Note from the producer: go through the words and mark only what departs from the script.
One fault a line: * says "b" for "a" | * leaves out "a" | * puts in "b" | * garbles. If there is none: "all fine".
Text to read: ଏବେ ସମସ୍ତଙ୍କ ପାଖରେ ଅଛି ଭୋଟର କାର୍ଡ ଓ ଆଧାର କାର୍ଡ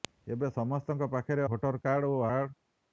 * leaves out "ଅଛି"
* leaves out "ଆଧାର"